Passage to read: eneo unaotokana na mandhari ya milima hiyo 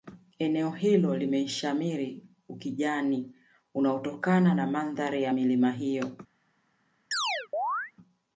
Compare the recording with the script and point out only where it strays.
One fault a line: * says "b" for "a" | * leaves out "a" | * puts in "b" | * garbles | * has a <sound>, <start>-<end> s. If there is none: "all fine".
* puts in "hilo limeshamiri ukijani"
* has a chirp, 7.1-7.9 s